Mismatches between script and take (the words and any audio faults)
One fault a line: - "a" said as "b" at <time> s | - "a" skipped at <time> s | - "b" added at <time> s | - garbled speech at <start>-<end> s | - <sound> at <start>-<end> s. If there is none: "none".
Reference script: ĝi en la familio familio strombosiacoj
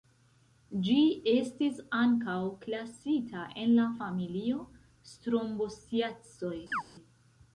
- "estis ankaŭ klasita" added at 1.3 s
- "familio" skipped at 4.6 s
- chirp at 6.7-6.8 s